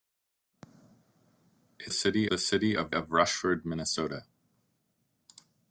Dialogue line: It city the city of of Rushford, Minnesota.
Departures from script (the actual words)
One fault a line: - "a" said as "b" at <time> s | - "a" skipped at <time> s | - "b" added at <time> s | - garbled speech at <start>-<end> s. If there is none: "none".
none